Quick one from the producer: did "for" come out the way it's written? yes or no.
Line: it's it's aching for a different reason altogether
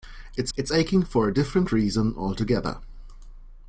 yes